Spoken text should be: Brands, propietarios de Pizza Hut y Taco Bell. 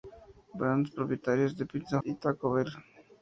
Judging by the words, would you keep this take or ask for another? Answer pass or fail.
fail